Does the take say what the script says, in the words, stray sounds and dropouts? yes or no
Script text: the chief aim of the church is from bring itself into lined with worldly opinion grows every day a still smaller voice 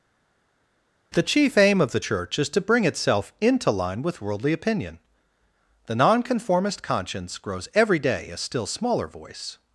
no